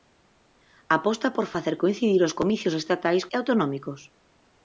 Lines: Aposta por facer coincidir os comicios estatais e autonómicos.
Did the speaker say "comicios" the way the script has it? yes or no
yes